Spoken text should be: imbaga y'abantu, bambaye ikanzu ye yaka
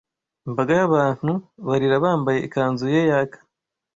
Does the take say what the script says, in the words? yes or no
no